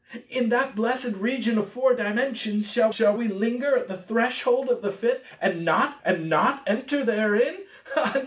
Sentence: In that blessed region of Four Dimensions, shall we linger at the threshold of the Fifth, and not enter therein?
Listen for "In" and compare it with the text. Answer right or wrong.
right